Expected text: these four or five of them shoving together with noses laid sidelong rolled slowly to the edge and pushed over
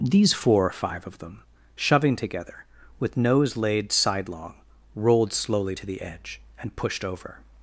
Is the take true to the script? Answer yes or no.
no